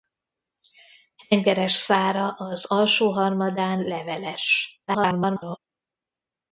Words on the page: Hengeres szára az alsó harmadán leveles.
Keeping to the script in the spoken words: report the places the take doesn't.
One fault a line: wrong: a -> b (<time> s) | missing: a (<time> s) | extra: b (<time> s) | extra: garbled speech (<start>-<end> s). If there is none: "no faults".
extra: garbled speech (4.9-5.6 s)